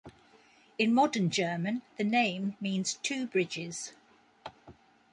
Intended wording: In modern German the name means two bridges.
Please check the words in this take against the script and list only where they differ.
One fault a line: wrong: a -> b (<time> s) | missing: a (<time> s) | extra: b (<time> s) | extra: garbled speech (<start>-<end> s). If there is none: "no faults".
no faults